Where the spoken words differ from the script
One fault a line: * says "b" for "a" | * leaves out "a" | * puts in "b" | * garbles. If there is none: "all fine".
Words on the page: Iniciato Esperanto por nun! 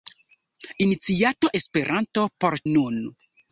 all fine